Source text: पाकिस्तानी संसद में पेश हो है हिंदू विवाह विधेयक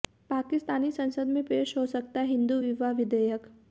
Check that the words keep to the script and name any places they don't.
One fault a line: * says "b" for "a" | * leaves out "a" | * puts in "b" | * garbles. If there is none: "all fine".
* puts in "सकता"